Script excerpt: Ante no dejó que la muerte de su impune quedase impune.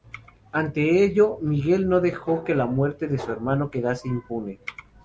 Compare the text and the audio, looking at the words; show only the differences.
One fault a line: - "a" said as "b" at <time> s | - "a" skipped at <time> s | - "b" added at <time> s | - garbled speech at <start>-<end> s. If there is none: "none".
- "ello Miguel" added at 1.0 s
- "impune" said as "hermano" at 3.3 s